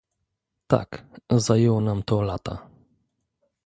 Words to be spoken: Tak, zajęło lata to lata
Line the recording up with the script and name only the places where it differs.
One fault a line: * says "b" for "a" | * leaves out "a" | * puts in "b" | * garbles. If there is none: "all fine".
* says "nam" for "lata"